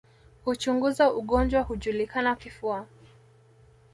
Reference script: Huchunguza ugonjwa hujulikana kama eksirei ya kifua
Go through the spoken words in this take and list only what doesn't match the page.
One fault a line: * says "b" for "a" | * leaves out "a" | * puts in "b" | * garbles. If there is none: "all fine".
* leaves out "kama eksirei ya"